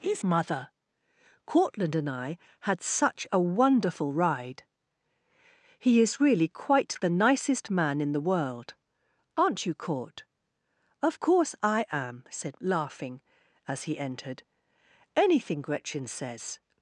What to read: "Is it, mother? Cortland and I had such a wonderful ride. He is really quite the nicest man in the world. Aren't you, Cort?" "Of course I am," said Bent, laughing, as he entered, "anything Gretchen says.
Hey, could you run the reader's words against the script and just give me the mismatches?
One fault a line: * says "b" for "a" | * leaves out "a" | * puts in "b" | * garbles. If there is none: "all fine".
* leaves out "it"
* leaves out "Bent"